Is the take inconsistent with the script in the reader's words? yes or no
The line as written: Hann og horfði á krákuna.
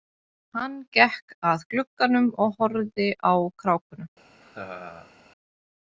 yes